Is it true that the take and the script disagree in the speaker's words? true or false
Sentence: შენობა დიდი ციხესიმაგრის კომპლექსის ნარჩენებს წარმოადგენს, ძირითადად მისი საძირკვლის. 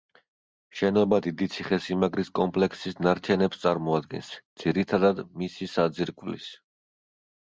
false